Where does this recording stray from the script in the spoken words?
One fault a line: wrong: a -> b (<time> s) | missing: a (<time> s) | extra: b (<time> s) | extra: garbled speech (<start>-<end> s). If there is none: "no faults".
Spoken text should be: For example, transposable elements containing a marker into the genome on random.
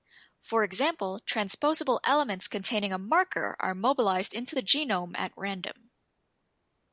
extra: are mobilized (3.6 s)
wrong: on -> at (5.2 s)